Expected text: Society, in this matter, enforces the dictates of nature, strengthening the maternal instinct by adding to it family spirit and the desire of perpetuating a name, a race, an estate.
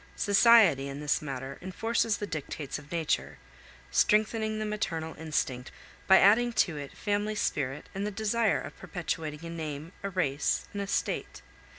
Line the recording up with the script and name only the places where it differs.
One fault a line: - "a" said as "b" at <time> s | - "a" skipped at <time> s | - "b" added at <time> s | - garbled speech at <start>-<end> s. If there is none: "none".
none